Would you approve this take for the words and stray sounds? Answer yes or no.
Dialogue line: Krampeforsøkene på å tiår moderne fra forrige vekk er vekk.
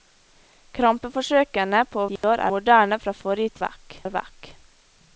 no